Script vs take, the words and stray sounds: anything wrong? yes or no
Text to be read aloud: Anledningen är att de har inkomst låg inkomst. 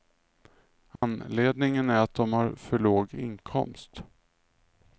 yes